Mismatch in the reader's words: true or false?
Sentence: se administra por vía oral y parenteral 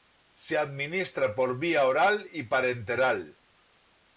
false